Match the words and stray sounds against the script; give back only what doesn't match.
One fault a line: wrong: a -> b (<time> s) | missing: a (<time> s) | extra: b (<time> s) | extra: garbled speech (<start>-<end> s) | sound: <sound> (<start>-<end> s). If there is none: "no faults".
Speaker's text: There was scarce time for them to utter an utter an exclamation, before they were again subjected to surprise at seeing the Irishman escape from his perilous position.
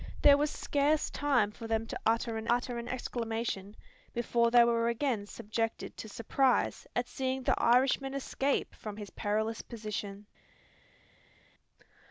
no faults